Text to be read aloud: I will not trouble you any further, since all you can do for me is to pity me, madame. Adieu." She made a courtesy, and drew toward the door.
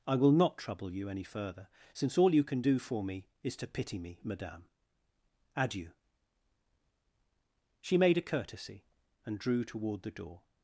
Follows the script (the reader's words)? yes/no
yes